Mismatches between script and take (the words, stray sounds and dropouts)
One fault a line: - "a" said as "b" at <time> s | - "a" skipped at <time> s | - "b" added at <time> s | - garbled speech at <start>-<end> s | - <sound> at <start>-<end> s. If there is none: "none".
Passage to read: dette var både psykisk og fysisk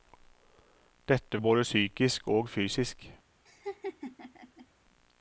- "var" skipped at 1.4 s
- laugh at 3.5-4.7 s